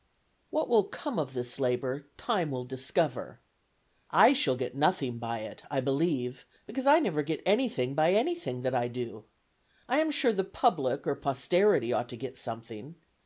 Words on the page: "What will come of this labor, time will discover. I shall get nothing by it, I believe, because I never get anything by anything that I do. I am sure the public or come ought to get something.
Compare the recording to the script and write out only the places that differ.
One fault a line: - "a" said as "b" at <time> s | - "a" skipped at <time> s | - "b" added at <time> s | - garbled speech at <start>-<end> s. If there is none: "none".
- "come" said as "posterity" at 11.2 s